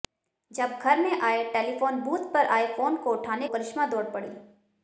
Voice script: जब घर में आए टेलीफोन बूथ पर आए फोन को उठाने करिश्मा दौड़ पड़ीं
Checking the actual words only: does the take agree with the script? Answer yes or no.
yes